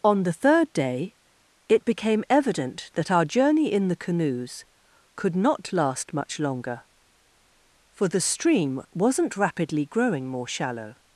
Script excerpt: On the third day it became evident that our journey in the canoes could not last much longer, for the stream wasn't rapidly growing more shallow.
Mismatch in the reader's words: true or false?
false